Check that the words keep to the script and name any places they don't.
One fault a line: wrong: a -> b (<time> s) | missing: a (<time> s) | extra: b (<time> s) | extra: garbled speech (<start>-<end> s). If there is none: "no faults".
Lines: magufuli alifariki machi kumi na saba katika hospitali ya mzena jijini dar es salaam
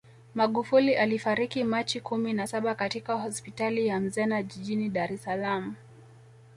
no faults